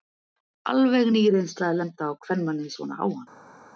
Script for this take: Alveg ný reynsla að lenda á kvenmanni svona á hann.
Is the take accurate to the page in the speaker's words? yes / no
yes